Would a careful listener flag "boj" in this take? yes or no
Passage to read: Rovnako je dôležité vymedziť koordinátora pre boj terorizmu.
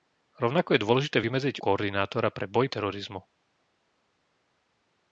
no